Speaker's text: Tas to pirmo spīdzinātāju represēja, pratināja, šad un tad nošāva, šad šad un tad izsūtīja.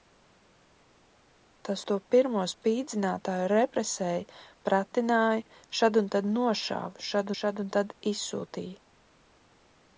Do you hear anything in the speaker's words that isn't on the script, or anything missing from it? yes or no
no